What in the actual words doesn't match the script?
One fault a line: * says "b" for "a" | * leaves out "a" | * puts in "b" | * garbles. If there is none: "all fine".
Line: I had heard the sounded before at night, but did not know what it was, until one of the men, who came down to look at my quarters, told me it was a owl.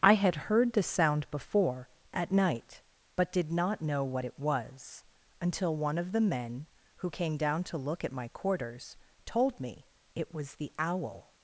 * says "sound" for "sounded"
* says "the" for "a"